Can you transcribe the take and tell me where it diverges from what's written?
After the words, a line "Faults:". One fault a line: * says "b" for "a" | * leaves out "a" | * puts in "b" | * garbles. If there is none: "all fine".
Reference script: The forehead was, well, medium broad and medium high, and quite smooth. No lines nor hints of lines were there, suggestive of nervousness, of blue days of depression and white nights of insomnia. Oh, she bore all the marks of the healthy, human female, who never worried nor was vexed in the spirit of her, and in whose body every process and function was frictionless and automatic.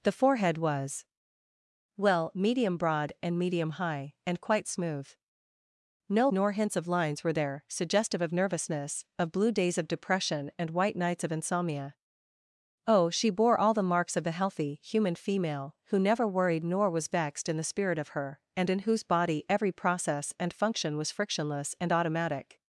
The forehead was, well, medium broad and medium high, and quite smooth. No nor hints of lines were there, suggestive of nervousness, of blue days of depression and white nights of insomnia. Oh, she bore all the marks of the healthy, human female, who never worried nor was vexed in the spirit of her, and in whose body every process and function was frictionless and automatic.
Faults:
* leaves out "lines"